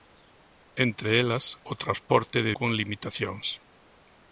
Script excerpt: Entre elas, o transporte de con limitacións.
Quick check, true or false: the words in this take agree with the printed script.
true